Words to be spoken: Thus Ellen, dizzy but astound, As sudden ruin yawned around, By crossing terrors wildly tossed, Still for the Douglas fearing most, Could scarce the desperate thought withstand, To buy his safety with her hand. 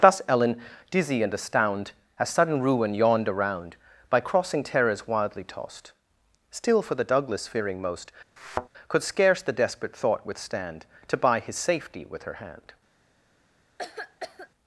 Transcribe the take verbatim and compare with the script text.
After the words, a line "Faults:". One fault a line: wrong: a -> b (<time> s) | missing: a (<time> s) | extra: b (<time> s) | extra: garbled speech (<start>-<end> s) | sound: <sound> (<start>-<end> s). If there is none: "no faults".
Thus Ellen, dizzy and astound, As sudden ruin yawned around, By crossing terrors wildly tossed, Still for the Douglas fearing most, Could scarce the desperate thought withstand, To buy his safety with her hand.
Faults:
wrong: but -> and (1.2 s)
sound: thud (8.4-8.7 s)
sound: cough (13.8-14.5 s)